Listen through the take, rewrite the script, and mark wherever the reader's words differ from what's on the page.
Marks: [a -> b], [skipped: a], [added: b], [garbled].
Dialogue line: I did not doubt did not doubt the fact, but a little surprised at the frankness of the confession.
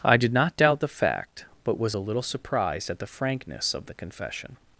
I did not doubt [skipped: did not doubt] the fact, but [added: was] a little surprised at the frankness of the confession.